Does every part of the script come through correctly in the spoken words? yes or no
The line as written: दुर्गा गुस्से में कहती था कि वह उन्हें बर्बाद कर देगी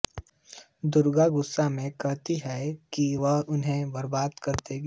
no